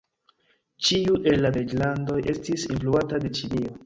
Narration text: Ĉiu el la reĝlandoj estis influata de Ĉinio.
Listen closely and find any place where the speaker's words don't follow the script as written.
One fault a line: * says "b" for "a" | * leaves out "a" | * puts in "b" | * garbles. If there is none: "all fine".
all fine